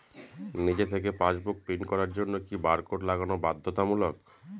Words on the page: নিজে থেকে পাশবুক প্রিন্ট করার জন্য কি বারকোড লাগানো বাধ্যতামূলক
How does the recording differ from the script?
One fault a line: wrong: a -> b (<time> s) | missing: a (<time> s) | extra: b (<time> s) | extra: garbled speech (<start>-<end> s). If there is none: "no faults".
no faults